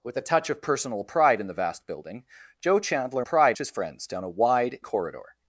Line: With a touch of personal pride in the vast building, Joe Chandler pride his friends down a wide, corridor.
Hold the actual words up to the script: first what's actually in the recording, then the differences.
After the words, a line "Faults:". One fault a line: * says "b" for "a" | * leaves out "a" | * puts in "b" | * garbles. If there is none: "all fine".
With a touch of personal pride in the vast building, Joe Chandler pride his friends down a wide, corridor.
Faults:
all fine